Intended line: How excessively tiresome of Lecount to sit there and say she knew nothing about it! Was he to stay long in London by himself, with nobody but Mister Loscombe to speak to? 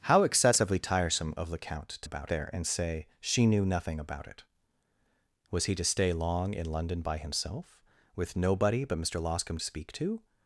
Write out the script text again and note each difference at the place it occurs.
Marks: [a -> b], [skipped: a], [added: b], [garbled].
How excessively tiresome of Lecount to [sit -> about] there and say she knew nothing about it! Was he to stay long in London by himself, with nobody but Mister Loscombe to speak to?